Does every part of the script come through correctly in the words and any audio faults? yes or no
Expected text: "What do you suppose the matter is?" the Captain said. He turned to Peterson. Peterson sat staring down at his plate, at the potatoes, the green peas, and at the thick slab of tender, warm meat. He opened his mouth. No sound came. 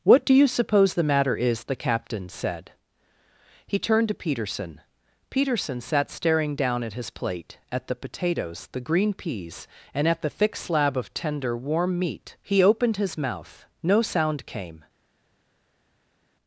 yes